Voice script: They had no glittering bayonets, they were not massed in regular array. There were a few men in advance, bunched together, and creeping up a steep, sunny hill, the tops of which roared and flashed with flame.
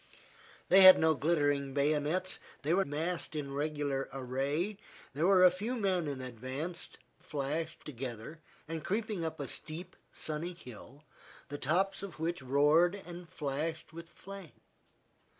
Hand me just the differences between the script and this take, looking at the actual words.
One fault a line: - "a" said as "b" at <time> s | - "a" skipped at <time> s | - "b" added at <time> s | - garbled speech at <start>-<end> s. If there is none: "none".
- "not" skipped at 2.8 s
- "bunched" said as "flashed" at 7.2 s